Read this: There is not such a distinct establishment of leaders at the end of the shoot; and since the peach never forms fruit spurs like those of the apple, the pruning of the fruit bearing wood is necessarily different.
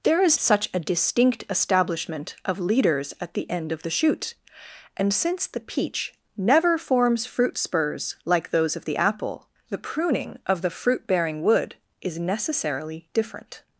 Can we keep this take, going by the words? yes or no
no